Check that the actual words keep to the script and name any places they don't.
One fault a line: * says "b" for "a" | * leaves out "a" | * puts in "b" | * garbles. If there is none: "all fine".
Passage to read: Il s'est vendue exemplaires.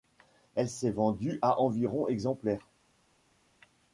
* says "Elle" for "Il"
* puts in "à environ"